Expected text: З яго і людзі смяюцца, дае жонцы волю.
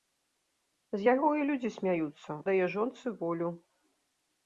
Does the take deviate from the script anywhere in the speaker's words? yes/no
no